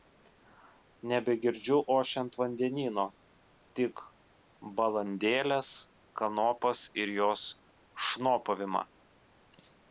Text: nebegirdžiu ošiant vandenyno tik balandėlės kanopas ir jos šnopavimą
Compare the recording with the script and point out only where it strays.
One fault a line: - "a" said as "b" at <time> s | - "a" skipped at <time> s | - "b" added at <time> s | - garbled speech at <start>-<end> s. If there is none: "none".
none